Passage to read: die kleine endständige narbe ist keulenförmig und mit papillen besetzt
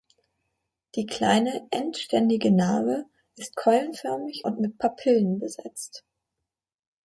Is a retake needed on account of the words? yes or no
no